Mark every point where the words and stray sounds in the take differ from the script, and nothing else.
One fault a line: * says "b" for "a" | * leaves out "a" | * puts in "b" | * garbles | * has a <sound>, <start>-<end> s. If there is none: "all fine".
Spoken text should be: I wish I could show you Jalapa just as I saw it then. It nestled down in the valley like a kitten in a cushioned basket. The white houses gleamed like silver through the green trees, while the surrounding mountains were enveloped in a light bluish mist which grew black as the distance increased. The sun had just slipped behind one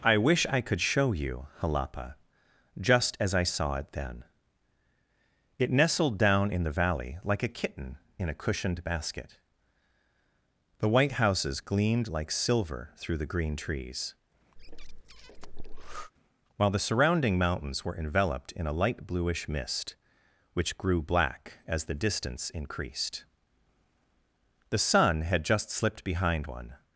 * has a breath, 14.6-16.1 s